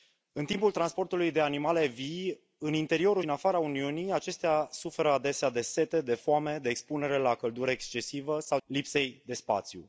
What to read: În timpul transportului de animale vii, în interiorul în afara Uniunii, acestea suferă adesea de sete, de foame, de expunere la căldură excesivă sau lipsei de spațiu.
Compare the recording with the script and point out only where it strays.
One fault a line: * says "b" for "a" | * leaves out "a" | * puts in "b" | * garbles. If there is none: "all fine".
all fine